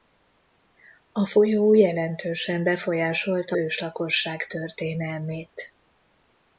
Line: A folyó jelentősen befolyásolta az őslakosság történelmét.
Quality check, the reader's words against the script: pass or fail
fail